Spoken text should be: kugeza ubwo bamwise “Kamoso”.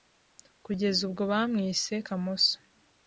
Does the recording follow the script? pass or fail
pass